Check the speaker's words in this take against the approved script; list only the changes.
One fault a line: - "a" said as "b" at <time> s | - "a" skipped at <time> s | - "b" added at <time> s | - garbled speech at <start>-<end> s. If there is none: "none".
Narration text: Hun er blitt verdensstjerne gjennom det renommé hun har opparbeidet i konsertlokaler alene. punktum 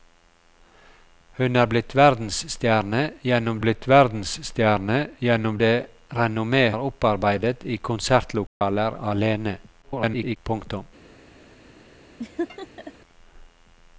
- "blitt verdensstjerne gjennom" added at 3.6 s
- "hun" skipped at 6.6 s
- garbled speech at 9.8-10.4 s